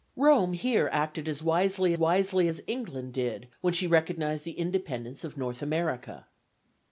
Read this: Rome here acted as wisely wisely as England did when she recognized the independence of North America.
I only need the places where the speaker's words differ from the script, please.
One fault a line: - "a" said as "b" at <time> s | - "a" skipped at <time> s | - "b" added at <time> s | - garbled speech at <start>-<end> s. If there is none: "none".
none